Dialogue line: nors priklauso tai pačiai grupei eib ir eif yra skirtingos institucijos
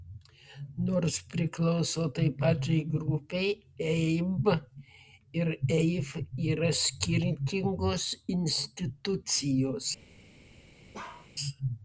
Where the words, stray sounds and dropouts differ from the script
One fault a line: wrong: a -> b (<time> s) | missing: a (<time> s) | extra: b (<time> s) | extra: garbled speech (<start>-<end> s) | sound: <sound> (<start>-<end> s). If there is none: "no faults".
sound: bark (10.9-11.3 s)